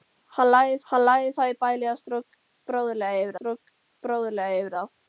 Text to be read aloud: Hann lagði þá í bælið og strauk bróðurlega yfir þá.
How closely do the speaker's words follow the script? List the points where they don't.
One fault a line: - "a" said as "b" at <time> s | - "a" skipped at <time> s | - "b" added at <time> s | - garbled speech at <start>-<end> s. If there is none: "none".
- "hann lagði" added at 0.9 s
- "strauk bróðurlega yfir" added at 3.4 s